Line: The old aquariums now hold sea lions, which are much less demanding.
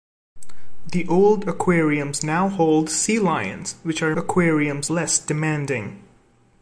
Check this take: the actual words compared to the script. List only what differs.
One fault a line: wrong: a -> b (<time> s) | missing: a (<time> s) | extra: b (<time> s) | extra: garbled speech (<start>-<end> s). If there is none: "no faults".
wrong: much -> aquariums (4.2 s)